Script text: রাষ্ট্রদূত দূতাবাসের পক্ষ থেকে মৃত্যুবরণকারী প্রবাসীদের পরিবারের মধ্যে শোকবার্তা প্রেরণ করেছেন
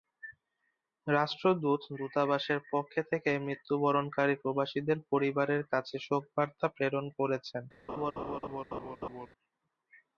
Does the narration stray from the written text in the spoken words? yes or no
yes